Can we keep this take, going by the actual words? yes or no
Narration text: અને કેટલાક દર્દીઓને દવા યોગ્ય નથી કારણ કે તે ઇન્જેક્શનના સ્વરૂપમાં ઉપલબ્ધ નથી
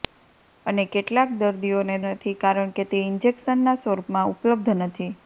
no